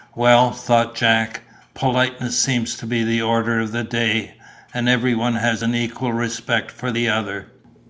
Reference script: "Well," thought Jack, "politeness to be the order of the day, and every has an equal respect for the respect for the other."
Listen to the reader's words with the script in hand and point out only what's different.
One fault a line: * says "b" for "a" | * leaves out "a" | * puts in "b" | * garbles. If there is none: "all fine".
* puts in "seems"
* puts in "one"
* leaves out "respect for the"